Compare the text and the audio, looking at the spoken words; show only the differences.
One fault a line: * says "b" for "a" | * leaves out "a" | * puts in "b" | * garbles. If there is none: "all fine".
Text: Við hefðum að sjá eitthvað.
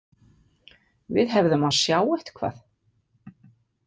all fine